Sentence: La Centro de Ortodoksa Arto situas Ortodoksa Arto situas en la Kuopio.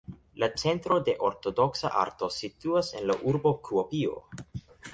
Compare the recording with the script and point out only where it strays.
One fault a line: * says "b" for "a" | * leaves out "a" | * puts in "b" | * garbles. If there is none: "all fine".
* leaves out "Ortodoksa Arto situas"
* puts in "urbo"